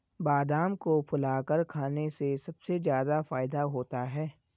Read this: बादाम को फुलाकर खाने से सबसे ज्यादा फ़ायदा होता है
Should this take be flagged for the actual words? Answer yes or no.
no